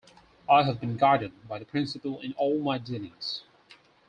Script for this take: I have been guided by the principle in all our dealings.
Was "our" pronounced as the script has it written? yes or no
no